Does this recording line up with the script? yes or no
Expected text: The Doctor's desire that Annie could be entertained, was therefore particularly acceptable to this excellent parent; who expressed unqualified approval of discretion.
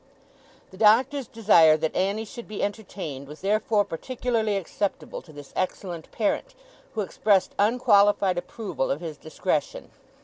no